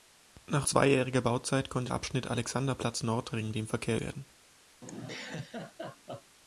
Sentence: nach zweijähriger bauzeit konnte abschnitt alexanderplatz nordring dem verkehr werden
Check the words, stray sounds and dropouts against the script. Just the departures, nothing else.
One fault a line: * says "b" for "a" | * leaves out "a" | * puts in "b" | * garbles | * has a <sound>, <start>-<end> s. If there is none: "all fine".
* has a laugh, 4.8-6.4 s